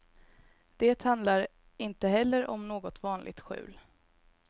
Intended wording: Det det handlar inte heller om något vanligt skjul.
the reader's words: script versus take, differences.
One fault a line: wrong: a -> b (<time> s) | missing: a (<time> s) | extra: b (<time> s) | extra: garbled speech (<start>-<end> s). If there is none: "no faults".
missing: det (1.0 s)